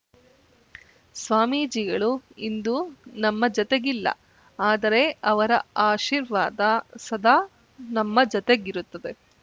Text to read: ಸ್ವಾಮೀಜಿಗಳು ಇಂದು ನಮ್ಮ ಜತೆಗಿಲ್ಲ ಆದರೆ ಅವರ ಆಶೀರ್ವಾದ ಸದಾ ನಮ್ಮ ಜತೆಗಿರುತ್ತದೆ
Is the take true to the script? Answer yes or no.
yes